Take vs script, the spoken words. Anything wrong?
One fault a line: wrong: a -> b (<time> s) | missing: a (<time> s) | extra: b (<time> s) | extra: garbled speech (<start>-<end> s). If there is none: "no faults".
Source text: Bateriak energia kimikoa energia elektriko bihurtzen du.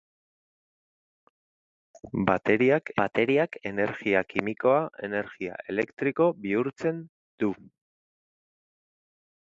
extra: bateriak (3.0 s)